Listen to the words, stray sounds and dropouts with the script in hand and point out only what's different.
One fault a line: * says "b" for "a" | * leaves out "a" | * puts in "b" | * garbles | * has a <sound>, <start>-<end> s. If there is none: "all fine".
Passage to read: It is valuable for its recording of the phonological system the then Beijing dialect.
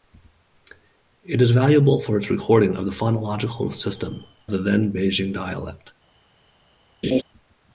* has a laugh, 7.0-7.2 s